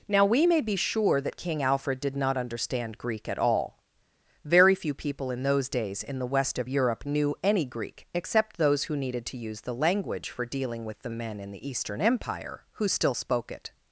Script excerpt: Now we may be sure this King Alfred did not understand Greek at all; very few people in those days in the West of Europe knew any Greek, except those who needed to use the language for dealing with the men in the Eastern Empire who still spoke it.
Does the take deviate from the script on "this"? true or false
true